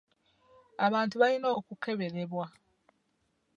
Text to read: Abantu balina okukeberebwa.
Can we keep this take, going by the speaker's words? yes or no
yes